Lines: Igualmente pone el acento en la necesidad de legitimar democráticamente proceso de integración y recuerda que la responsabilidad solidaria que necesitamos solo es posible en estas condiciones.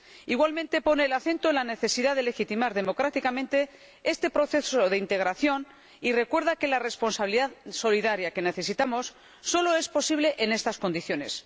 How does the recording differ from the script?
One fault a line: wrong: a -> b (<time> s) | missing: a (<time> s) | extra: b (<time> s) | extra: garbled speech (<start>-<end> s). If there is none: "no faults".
extra: este (4.0 s)